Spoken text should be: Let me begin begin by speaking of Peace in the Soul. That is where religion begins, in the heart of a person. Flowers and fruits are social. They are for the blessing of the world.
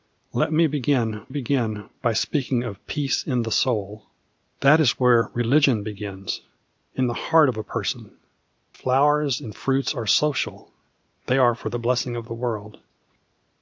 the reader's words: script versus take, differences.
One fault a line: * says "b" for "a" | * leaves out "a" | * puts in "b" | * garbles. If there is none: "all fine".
all fine